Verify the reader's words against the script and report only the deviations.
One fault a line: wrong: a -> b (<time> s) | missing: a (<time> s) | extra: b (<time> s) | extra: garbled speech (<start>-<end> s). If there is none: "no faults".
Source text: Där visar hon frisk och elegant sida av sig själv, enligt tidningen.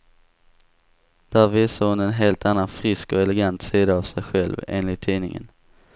extra: en helt annan (2.0 s)